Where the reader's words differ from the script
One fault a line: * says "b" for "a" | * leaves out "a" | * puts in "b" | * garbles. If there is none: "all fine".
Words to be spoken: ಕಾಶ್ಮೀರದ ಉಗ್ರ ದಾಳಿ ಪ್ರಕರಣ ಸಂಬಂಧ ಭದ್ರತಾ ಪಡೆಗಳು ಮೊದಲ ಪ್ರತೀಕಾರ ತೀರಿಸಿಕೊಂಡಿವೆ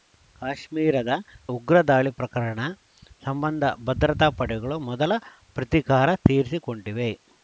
all fine